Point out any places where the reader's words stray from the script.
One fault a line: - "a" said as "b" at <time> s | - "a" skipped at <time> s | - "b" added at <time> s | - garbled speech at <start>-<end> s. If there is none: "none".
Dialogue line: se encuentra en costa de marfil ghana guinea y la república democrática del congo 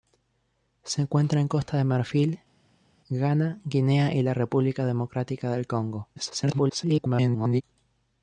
- garbled speech at 6.2-7.6 s